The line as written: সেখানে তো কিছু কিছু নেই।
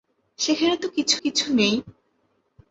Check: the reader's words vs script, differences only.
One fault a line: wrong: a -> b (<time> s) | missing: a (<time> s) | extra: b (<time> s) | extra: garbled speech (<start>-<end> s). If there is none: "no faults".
no faults